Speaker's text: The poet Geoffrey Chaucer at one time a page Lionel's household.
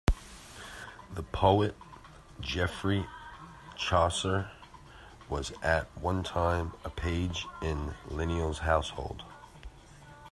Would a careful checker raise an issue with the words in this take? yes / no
yes